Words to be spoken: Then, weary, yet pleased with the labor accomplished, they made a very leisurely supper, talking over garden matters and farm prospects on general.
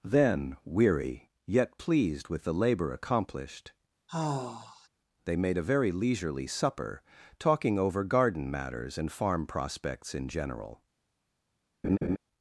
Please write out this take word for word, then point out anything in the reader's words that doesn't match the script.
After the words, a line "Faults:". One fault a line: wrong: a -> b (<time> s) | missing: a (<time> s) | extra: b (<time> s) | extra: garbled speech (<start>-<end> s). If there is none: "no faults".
Then, weary, yet pleased with the labor accomplished, they made a very leisurely supper, talking over garden matters and farm prospects in general.
Faults:
wrong: on -> in (10.1 s)